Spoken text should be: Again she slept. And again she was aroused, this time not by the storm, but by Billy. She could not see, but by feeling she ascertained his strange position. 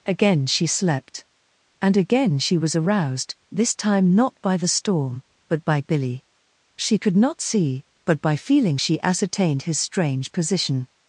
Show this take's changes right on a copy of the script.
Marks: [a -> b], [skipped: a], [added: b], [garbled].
Again she slept. And again she was aroused, this time not by the storm, but by Billy. She could not see, but by feeling she ascertained his strange position.